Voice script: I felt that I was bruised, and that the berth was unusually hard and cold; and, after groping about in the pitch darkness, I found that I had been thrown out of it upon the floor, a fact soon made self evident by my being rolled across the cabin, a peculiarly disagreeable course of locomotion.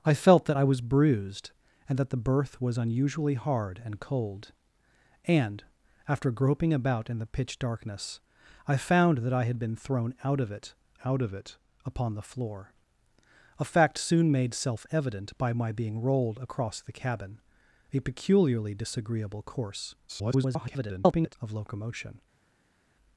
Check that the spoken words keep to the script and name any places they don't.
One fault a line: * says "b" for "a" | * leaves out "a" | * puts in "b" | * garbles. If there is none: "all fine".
* puts in "out of it"
* garbles